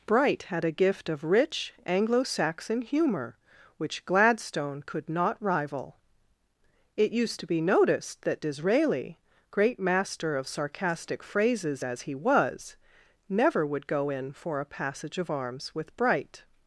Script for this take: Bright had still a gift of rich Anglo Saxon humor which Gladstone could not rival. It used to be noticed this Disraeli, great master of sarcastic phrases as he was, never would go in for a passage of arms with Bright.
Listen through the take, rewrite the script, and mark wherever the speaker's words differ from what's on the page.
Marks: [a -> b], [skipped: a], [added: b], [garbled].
Bright had [skipped: still] a gift of rich Anglo Saxon humor which Gladstone could not rival. It used to be noticed [this -> that] Disraeli, great master of sarcastic phrases as he was, never would go in for a passage of arms with Bright.